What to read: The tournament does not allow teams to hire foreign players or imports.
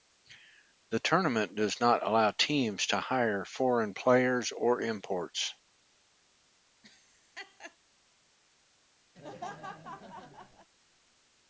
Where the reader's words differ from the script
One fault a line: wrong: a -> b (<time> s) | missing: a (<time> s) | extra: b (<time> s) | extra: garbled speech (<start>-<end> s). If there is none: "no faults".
no faults